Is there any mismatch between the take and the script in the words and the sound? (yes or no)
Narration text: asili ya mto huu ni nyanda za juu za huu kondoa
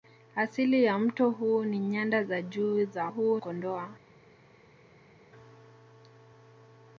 no